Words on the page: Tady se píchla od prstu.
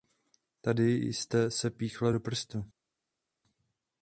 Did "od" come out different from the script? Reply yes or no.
yes